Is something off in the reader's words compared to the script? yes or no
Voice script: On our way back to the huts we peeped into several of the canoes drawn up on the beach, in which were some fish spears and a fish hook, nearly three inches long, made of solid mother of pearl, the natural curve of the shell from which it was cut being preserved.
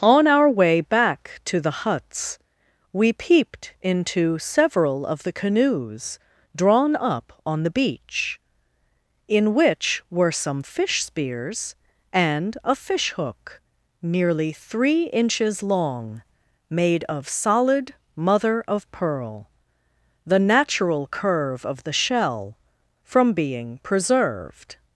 yes